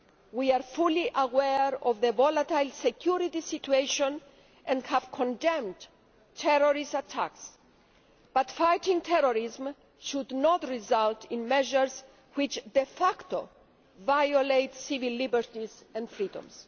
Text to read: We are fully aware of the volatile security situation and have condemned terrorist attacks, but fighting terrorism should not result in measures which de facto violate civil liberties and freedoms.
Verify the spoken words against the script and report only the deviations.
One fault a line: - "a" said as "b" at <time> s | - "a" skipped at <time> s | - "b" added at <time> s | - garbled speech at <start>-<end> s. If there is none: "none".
none